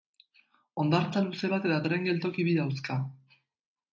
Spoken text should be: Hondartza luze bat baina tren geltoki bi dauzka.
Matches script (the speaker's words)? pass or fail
fail